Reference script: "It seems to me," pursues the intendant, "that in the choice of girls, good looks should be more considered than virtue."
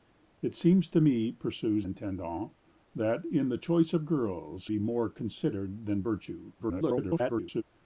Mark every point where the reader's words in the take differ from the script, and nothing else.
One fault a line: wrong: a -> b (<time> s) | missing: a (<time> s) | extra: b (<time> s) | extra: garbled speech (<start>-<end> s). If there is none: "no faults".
missing: the (1.9 s)
missing: good looks should (4.7 s)
extra: garbled speech (6.6-7.6 s)